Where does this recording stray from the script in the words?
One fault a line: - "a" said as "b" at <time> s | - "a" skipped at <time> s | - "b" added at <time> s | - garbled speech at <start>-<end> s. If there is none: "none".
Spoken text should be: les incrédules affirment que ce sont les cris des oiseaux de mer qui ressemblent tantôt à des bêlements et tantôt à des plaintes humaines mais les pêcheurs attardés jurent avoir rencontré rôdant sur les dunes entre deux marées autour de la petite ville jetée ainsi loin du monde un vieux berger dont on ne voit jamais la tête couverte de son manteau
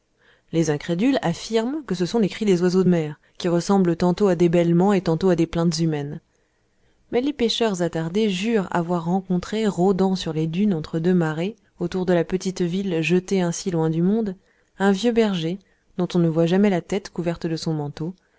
none